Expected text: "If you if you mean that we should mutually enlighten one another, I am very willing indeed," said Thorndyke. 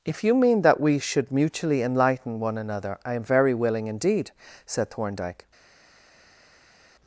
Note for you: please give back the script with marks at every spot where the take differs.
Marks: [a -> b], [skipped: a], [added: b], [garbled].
"If you [skipped: if you] mean that we should mutually enlighten one another, I am very willing indeed," said Thorndyke.